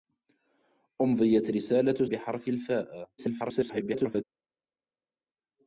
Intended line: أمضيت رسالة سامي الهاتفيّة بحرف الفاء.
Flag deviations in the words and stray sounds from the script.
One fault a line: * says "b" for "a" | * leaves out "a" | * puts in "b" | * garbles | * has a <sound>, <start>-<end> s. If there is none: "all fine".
* leaves out "سامي الهاتفيّة"
* garbles